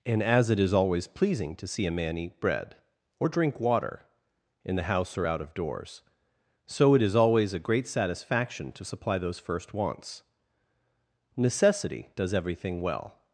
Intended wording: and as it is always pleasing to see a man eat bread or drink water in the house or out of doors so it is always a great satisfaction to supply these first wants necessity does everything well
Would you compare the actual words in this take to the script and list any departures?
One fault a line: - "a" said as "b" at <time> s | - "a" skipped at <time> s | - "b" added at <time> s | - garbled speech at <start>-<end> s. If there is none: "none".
- "these" said as "those" at 9.2 s